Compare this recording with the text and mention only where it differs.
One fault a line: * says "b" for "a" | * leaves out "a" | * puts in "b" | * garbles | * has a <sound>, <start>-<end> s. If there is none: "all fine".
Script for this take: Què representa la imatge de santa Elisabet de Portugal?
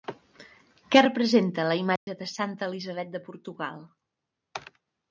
* has a dropout, 2.0-2.1 s